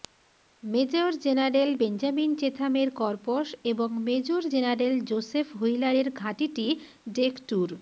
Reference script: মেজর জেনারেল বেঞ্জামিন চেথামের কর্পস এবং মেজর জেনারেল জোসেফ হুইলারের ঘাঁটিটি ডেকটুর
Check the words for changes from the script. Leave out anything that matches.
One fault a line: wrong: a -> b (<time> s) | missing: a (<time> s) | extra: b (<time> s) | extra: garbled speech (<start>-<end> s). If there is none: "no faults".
no faults